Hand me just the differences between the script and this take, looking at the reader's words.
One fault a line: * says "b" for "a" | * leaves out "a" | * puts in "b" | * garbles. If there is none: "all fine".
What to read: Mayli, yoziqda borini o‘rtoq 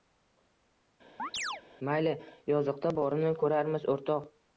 * puts in "ko‘rarmiz"